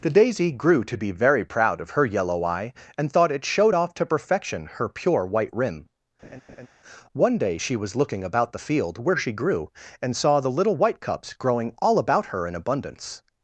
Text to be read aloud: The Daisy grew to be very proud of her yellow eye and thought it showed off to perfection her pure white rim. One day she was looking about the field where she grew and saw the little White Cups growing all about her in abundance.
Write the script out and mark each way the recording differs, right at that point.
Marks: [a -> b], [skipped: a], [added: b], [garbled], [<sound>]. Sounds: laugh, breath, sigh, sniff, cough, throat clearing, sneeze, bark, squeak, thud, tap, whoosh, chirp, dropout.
The Daisy grew to be very proud of her yellow eye and thought it showed off to perfection her pure white rim. [laugh] One day she was looking about the field where she grew and saw the little White Cups growing all about her in abundance.